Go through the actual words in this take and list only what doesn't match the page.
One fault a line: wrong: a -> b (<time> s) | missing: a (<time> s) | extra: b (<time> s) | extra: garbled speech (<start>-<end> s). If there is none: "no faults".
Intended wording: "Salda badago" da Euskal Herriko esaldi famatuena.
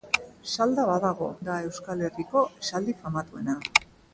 no faults